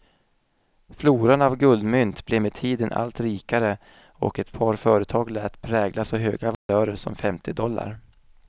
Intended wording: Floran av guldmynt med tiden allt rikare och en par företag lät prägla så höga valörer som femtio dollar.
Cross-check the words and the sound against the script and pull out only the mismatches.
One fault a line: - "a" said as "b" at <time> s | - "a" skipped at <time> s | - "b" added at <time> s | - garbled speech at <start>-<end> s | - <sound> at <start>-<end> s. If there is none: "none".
- "blev" added at 2.2 s
- "en" said as "ett" at 4.4 s
- dropout at 6.5-6.7 s